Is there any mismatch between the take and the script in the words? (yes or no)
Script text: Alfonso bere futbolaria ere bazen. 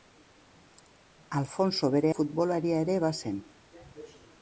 no